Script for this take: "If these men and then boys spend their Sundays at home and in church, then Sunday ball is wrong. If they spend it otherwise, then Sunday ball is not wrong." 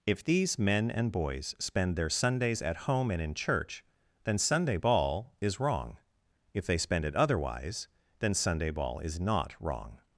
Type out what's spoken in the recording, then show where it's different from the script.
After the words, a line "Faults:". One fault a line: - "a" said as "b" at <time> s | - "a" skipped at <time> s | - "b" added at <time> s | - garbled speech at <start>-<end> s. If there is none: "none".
"If these men and boys spend their Sundays at home and in church, then Sunday ball is wrong. If they spend it otherwise, then Sunday ball is not wrong."
Faults:
- "then" skipped at 1.1 s